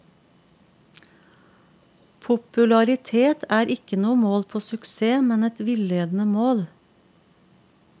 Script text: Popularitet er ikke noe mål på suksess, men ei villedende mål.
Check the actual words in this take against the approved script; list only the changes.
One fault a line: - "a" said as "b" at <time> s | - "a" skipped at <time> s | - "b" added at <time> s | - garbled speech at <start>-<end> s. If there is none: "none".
- "ei" said as "et" at 5.5 s